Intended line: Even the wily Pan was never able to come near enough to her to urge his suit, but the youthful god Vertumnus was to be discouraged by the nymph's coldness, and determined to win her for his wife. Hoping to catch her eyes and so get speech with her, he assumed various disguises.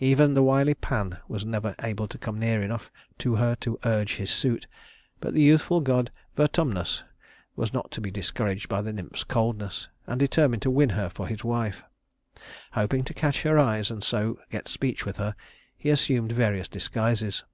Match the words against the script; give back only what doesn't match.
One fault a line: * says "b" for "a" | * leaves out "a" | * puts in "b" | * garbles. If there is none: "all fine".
* puts in "not"